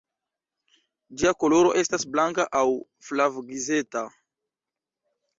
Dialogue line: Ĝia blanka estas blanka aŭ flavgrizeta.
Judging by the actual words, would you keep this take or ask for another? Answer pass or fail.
fail